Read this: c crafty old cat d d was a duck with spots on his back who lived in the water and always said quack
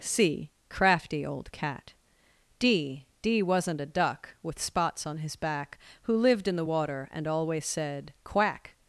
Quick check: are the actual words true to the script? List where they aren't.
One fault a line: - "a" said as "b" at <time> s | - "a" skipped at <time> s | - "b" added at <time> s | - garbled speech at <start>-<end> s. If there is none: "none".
- "was" said as "wasn't" at 3.4 s